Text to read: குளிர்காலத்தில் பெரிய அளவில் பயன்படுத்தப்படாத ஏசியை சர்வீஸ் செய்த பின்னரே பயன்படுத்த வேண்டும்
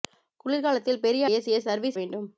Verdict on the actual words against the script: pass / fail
fail